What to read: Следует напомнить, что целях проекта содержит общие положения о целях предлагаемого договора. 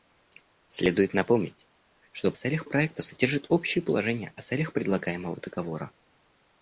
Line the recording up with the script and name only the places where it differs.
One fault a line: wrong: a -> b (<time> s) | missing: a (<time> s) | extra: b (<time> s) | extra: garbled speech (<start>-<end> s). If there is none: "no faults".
no faults